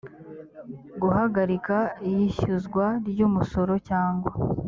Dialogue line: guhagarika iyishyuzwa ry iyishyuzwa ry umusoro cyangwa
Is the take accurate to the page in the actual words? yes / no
no